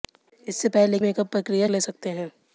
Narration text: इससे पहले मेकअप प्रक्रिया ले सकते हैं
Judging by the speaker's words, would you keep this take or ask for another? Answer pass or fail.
pass